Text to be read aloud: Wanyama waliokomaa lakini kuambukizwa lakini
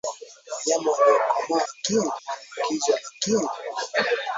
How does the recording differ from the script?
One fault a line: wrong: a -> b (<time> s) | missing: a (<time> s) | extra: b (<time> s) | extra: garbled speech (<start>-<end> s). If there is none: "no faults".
no faults